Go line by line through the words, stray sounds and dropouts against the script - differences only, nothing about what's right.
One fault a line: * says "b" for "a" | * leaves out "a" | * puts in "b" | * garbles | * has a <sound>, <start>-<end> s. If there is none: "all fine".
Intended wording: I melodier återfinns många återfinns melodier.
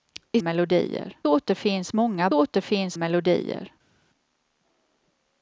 all fine